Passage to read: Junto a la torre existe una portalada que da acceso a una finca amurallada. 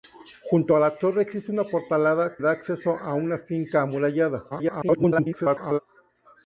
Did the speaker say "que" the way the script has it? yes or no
no